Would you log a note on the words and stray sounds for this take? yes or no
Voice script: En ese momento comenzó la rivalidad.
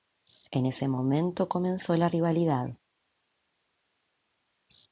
no